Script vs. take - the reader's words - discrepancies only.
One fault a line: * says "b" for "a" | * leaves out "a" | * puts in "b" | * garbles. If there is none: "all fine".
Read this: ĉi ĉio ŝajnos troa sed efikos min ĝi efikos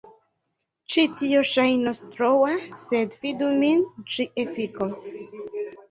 * says "tio" for "ĉio"
* says "fidu" for "efikos"